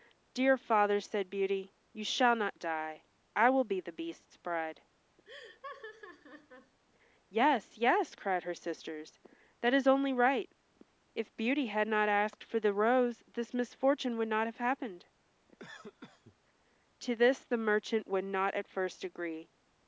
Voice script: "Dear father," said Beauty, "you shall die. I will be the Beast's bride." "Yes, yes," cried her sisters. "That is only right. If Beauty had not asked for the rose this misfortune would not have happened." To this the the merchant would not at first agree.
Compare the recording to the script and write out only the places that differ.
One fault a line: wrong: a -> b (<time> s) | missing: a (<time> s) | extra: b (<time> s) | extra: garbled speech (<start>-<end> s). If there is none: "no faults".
extra: not (2.4 s)
missing: the (17.6 s)